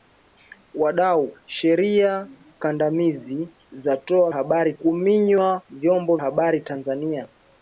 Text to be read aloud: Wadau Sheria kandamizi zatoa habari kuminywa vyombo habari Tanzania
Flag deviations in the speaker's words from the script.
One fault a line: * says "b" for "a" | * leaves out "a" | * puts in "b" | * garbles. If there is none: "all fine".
all fine